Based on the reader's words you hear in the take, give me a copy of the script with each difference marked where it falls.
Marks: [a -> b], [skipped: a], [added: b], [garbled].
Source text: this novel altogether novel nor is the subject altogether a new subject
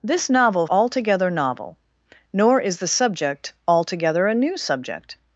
this novel altogether novel nor is the subject altogether a new subject